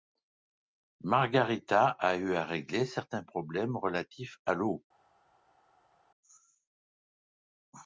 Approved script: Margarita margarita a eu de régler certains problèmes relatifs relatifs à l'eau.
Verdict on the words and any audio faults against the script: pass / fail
fail